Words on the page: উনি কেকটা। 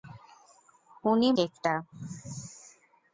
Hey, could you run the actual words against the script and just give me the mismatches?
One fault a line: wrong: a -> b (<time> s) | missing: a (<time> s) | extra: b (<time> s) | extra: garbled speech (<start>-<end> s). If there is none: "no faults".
no faults